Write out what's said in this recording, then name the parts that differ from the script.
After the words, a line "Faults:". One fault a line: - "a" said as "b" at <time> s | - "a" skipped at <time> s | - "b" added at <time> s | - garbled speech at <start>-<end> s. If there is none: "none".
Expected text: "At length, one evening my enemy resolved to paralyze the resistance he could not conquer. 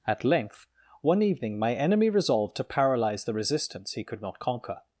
"At length, one evening my enemy resolved to paralyze the resistance he could not conquer.
Faults:
none